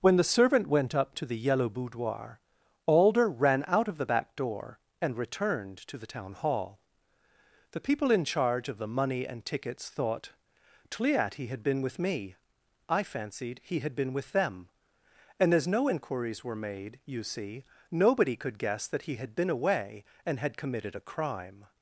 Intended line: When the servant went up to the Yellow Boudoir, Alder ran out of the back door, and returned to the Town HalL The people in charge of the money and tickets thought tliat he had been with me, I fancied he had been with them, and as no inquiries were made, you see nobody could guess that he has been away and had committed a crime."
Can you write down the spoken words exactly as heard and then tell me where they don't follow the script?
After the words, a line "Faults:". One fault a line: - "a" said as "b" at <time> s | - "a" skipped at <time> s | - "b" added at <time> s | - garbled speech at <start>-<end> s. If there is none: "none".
When the servant went up to the Yellow Boudoir, Alder ran out of the back door, and returned to the Town HalL The people in charge of the money and tickets thought tliat he had been with me, I fancied he had been with them, and as no inquiries were made, you see nobody could guess that he had been away and had committed a crime."
Faults:
- "has" said as "had" at 19.2 s